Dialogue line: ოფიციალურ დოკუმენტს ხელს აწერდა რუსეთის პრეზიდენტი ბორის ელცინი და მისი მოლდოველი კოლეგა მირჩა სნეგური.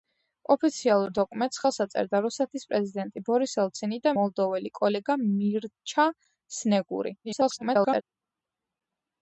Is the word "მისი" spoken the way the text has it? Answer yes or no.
no